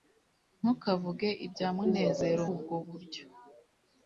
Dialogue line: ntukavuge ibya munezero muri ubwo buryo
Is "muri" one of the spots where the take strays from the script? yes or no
yes